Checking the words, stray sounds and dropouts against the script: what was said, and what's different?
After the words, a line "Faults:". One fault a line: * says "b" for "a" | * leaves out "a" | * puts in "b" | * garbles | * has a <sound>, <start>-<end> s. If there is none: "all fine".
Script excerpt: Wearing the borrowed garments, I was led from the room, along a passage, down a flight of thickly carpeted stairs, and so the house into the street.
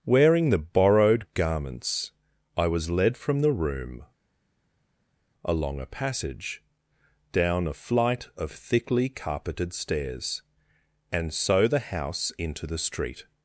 Wearing the borrowed garments, I was led from the room, along a passage, down a flight of thickly carpeted stairs, and so the house into the street.
Faults:
all fine